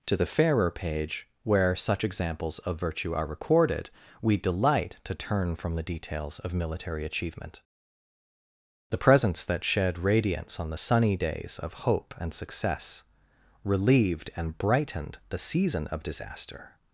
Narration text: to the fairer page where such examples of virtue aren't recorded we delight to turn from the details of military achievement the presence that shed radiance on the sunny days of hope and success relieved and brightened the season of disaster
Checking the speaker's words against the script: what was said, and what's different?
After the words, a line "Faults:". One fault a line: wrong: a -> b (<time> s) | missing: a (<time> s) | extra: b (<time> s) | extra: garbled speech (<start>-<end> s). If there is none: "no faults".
to the fairer page where such examples of virtue are recorded we delight to turn from the details of military achievement the presence that shed radiance on the sunny days of hope and success relieved and brightened the season of disaster
Faults:
wrong: aren't -> are (3.1 s)